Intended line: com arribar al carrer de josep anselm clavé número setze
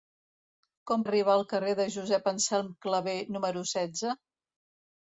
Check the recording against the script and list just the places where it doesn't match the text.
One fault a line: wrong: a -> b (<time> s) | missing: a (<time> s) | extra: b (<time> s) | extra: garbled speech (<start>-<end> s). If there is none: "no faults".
no faults